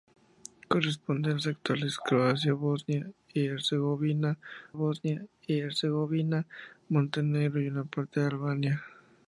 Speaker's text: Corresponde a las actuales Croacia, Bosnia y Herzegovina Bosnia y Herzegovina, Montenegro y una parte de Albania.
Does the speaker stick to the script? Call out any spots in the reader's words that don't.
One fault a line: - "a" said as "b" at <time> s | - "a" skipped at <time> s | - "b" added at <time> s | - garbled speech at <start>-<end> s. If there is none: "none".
none